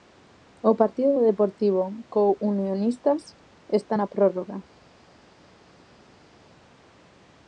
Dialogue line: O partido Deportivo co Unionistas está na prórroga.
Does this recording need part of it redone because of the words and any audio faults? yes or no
yes